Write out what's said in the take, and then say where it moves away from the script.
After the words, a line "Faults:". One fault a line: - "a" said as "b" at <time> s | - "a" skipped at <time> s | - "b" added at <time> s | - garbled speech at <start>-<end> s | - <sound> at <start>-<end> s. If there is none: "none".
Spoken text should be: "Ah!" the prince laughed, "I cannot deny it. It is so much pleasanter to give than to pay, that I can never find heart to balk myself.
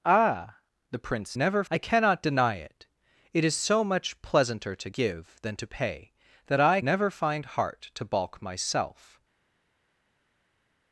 "Ah!" the prince never, "I cannot deny it. It is so much pleasanter to give than to pay, that I never find heart to balk myself.
Faults:
- "laughed" said as "never" at 1.4 s
- "can" skipped at 6.8 s